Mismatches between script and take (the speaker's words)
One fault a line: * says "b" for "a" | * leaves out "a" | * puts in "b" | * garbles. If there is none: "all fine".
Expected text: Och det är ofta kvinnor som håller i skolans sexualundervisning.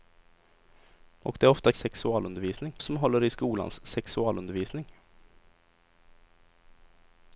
* says "sexualundervisning" for "kvinnor"